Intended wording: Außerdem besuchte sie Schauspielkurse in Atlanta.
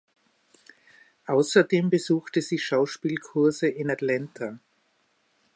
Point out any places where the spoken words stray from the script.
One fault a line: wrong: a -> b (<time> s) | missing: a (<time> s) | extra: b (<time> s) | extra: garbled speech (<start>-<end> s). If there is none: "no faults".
no faults